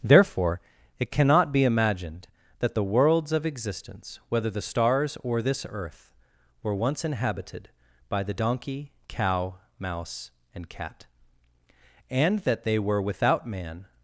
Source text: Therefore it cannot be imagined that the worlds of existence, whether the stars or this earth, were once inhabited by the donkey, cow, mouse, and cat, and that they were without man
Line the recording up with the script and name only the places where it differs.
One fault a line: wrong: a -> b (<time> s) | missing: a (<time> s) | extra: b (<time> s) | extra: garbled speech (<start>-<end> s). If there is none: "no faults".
no faults